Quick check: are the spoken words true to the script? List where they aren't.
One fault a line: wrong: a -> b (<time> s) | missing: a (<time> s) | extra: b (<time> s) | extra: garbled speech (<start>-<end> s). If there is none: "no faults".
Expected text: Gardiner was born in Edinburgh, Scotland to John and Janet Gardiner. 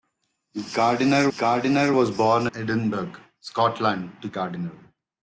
extra: gardiner (1.4 s)
missing: in (2.5 s)
missing: John and Janet (4.3 s)